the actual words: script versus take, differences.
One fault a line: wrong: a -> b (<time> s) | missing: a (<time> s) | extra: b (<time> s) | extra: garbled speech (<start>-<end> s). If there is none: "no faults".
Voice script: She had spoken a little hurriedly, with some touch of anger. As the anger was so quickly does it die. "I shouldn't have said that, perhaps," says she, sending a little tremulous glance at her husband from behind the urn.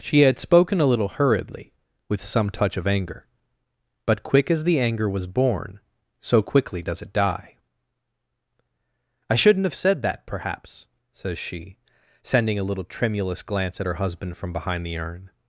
extra: But quick (4.1 s)
extra: born (5.3 s)